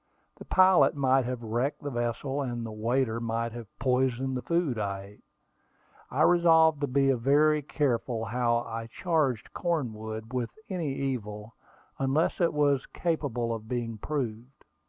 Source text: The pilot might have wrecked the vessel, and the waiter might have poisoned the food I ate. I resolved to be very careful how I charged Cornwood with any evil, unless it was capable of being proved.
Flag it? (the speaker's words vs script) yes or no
no